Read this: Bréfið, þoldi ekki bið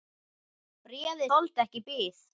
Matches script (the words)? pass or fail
pass